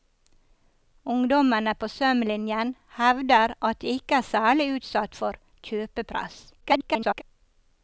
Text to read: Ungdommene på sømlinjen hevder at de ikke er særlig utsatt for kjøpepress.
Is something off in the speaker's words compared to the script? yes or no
yes